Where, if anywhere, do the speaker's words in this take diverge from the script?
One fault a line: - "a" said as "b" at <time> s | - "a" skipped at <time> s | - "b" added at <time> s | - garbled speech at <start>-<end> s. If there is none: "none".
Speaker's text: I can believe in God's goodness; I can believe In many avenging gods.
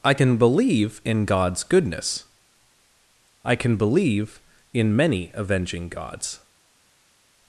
none